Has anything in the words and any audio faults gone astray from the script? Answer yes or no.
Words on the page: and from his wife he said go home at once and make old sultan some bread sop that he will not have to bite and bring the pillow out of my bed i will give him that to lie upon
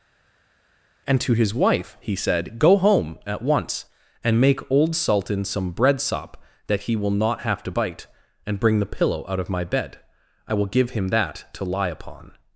yes